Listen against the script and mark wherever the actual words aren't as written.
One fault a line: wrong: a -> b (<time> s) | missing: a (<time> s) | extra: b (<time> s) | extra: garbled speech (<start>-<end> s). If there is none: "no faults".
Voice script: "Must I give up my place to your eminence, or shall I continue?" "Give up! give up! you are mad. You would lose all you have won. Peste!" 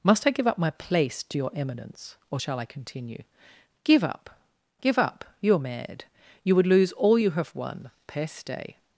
no faults